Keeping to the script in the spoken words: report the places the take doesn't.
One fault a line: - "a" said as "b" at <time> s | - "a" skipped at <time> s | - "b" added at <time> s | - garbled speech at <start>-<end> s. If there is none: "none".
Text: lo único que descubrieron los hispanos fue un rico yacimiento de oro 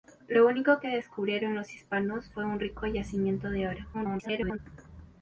- garbled speech at 3.9-4.6 s